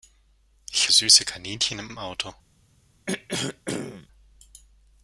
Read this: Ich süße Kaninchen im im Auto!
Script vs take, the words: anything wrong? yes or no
no